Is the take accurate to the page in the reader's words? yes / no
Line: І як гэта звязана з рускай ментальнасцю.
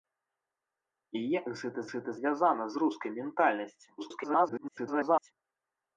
no